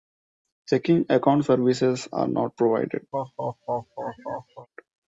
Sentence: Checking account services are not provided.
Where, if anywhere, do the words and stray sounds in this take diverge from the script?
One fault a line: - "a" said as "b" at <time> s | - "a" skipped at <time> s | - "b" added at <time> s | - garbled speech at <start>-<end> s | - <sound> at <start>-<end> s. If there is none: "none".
- laugh at 3.1-4.7 s